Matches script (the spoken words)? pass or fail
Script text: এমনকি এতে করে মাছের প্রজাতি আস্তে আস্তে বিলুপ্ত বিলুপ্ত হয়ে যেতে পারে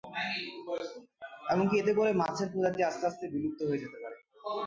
fail